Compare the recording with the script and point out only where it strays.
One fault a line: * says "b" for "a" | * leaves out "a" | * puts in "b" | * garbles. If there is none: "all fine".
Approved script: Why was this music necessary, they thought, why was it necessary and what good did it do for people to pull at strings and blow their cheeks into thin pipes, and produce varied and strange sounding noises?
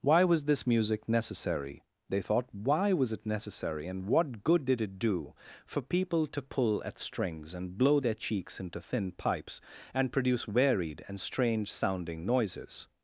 all fine